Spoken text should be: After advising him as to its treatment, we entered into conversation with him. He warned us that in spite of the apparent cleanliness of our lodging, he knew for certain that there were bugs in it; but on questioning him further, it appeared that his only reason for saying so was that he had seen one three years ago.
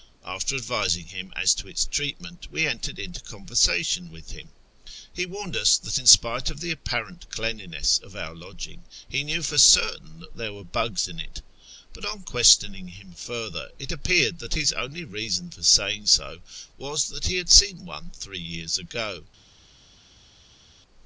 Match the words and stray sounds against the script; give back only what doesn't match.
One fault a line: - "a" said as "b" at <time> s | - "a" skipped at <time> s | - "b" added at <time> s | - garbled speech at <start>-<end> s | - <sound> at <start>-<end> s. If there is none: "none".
none